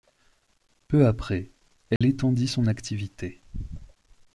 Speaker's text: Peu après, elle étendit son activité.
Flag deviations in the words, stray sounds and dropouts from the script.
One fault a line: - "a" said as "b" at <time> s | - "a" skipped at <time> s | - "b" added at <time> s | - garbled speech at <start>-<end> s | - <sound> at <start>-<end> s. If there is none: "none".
- dropout at 2.0-2.0 s